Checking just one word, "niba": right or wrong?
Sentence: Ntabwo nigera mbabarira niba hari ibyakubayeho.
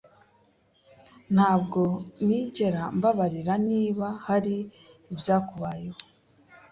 right